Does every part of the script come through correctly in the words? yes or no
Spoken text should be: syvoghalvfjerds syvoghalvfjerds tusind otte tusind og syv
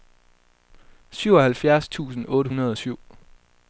no